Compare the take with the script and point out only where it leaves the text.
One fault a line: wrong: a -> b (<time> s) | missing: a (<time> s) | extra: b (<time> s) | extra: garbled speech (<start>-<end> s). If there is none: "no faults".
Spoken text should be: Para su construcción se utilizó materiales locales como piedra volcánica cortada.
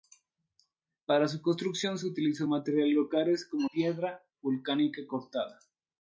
no faults